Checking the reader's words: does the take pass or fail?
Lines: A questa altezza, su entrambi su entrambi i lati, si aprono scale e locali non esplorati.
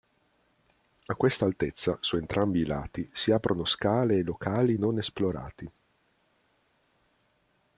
fail